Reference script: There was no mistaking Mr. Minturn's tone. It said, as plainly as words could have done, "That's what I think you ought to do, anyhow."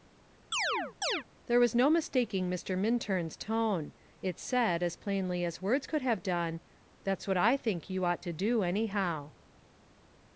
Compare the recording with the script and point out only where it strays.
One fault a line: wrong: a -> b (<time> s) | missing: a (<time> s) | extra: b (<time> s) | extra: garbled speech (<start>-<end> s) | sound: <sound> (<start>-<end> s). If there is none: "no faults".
sound: chirp (0.5-1.2 s)